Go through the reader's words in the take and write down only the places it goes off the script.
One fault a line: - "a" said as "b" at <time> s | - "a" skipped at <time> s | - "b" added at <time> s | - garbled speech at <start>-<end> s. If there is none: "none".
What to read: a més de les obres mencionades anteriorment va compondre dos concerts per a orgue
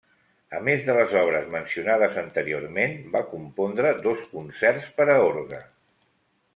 none